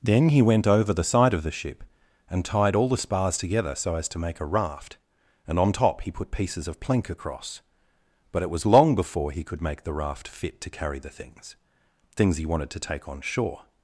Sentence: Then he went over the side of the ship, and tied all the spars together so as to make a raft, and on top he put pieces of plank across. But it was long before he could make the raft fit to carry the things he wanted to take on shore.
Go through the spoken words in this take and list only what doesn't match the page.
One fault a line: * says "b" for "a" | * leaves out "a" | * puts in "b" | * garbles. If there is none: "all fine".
* puts in "things"